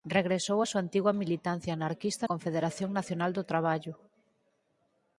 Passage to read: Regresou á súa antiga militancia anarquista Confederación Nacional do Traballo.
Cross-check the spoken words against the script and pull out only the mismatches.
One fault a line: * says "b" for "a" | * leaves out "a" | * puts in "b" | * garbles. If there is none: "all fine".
all fine